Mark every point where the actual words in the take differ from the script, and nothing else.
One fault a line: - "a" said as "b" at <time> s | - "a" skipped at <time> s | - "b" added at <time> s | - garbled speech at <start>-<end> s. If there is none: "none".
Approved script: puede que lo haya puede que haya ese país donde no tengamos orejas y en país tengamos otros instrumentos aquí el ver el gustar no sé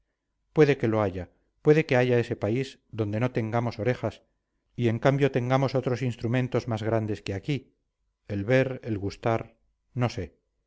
- "país" said as "cambio" at 5.0 s
- "más grandes que" added at 6.7 s